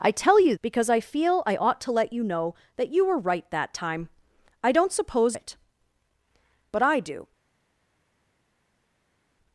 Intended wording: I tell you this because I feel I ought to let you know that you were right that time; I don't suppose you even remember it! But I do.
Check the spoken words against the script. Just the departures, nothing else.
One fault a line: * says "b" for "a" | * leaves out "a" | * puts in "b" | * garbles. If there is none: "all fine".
* leaves out "this"
* leaves out "you even remember"